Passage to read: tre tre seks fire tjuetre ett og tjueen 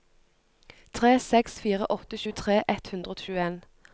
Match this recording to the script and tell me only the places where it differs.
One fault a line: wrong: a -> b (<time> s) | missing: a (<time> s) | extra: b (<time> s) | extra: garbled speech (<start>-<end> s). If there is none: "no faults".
missing: tre (1.1 s)
extra: åtte (2.0 s)
extra: hundre (2.9 s)